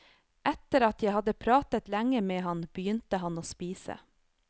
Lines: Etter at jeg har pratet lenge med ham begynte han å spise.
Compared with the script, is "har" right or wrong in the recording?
wrong